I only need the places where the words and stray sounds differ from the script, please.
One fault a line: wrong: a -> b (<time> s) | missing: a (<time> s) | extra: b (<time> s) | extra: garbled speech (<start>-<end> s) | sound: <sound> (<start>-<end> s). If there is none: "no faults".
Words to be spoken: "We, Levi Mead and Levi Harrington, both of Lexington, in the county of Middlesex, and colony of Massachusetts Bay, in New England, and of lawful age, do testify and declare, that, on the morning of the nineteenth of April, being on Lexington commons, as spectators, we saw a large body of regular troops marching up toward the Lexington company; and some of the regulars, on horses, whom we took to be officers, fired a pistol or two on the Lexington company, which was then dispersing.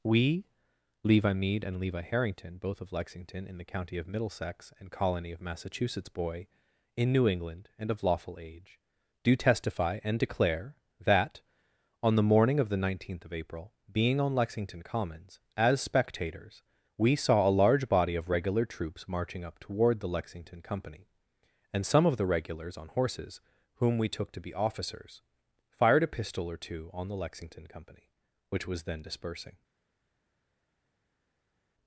wrong: Bay -> Boy (6.1 s)